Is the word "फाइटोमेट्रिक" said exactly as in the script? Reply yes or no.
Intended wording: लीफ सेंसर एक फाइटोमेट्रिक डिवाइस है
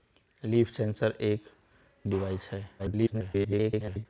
no